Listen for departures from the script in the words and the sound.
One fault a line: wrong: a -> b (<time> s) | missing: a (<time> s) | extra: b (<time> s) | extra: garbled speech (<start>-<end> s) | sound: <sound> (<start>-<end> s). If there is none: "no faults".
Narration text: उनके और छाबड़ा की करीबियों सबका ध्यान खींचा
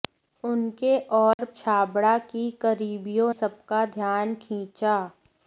sound: dropout (1.3-1.4 s)